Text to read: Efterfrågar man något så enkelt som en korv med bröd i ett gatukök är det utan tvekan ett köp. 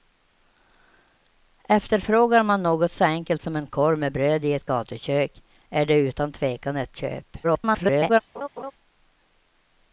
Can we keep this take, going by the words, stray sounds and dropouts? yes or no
no